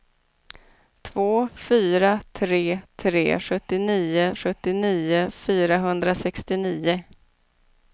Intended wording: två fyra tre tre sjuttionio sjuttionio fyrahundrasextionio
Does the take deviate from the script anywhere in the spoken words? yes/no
no